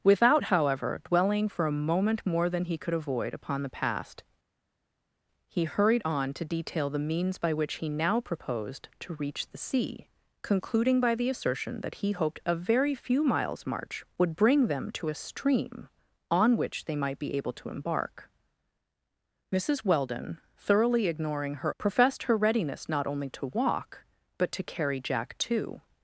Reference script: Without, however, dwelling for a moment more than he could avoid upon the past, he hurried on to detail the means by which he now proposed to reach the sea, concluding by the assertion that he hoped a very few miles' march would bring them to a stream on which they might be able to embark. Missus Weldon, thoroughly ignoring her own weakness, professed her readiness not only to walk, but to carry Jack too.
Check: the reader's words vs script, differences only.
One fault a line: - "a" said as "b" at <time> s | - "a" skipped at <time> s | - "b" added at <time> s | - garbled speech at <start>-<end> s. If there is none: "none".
- "own weakness" skipped at 21.7 s